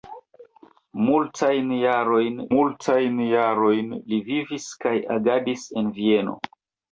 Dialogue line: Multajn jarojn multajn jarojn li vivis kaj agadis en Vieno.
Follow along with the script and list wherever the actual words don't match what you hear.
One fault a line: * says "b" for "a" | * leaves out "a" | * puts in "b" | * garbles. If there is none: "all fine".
all fine